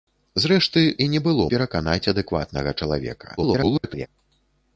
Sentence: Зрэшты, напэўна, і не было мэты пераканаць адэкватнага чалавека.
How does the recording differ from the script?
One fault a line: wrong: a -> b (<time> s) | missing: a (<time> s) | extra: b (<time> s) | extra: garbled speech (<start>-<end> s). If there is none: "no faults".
missing: напэўна (0.8 s)
missing: мэты (1.5 s)
extra: garbled speech (3.4-4.1 s)